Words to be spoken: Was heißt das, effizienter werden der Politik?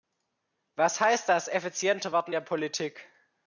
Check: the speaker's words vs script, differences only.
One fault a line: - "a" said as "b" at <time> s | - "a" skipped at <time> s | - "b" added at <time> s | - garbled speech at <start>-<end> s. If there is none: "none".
none